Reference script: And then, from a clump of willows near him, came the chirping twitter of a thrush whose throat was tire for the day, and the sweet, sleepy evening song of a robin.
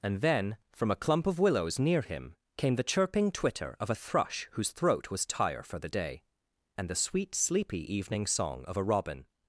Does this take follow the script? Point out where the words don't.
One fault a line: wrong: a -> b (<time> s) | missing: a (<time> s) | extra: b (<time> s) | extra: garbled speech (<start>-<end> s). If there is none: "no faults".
no faults